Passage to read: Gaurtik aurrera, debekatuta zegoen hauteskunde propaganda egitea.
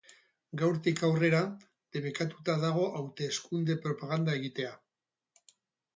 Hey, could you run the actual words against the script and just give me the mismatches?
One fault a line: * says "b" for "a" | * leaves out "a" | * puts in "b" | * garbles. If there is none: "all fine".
* says "dago" for "zegoen"